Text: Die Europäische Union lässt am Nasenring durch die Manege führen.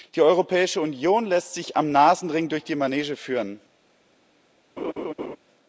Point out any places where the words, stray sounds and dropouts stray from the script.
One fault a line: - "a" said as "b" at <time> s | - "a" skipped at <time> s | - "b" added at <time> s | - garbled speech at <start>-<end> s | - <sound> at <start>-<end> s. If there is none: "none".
- "sich" added at 1.5 s
- laugh at 4.8-5.4 s